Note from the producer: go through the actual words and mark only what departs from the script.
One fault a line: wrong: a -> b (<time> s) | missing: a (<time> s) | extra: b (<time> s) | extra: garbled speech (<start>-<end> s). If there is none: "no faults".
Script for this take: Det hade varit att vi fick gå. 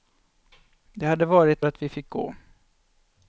no faults